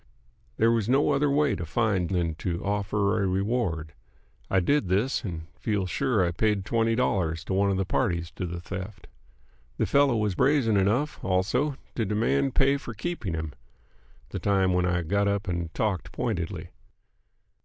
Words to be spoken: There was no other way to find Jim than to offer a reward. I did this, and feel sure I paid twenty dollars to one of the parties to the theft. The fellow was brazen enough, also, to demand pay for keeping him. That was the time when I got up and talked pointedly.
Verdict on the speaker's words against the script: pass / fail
fail